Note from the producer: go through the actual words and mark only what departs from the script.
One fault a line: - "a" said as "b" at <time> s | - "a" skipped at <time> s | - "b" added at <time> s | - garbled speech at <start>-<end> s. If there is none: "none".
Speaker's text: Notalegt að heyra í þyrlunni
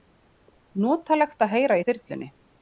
none